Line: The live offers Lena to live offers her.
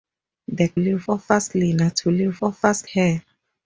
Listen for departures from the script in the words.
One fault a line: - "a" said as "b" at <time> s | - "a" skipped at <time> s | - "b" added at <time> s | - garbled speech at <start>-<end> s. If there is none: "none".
none